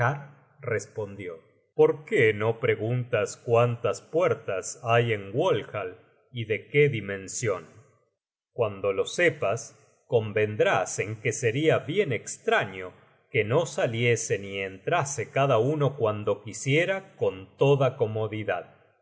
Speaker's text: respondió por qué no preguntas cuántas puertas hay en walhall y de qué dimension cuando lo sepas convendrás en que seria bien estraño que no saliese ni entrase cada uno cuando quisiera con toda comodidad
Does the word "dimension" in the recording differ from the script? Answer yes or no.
no